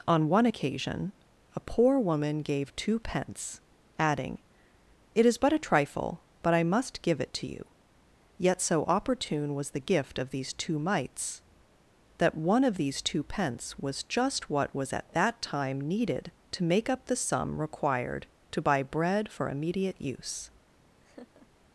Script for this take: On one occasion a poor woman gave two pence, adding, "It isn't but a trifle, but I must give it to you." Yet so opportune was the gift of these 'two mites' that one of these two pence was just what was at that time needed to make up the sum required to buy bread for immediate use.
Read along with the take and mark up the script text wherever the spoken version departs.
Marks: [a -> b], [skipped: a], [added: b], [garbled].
On one occasion a poor woman gave two pence, adding, "It [isn't -> is] but a trifle, but I must give it to you." Yet so opportune was the gift of these 'two mites' that one of these two pence was just what was at that time needed to make up the sum required to buy bread for immediate use.